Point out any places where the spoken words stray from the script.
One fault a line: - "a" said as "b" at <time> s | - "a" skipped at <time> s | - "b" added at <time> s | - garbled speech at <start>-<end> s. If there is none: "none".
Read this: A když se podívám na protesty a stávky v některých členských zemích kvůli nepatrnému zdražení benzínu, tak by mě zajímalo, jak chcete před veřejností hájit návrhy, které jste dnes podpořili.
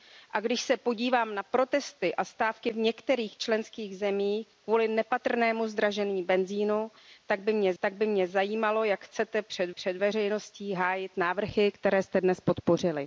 - "tak by mě" added at 7.8 s
- "před" added at 9.7 s